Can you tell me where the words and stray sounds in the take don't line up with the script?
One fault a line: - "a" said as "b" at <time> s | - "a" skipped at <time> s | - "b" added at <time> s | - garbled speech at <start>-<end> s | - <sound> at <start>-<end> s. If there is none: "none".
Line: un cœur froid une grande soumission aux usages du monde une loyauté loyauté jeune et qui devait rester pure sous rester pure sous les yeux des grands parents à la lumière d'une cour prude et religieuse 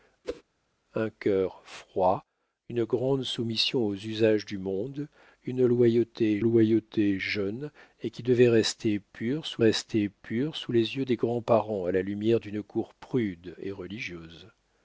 - whoosh at 0.2-0.4 s